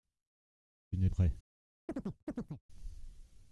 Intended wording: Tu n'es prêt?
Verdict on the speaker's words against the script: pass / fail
pass